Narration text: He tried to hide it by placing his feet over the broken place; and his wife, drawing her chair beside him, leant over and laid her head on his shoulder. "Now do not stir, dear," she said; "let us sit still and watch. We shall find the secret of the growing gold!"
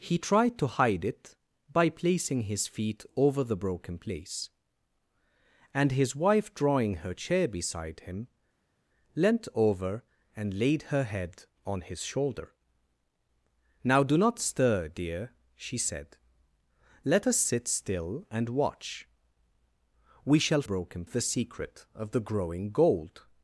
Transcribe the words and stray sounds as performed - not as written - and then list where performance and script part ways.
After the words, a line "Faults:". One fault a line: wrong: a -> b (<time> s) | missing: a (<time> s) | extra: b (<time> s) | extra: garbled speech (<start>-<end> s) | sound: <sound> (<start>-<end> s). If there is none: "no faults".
He tried to hide it by placing his feet over the broken place; and his wife, drawing her chair beside him, leant over and laid her head on his shoulder. "Now do not stir, dear," she said; "let us sit still and watch. We shall broken the secret of the growing gold!"
Faults:
wrong: find -> broken (20.6 s)